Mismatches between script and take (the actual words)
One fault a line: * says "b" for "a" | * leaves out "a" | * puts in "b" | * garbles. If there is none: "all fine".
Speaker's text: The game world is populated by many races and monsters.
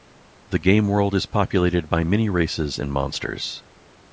all fine